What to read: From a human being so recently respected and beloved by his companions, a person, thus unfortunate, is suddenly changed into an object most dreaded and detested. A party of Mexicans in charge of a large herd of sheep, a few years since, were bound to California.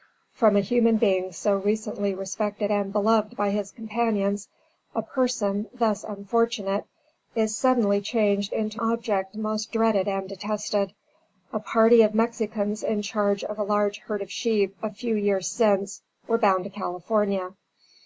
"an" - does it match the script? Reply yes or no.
no